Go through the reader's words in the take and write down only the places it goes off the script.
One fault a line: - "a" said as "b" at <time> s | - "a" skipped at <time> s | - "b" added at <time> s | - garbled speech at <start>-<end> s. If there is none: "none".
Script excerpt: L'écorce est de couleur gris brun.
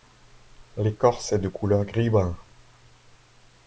none